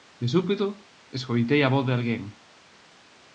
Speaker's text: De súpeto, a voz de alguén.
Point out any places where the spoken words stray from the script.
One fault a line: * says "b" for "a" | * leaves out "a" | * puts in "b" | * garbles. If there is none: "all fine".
* puts in "escoitei"